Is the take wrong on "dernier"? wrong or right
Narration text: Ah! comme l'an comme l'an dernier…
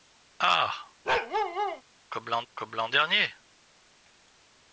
right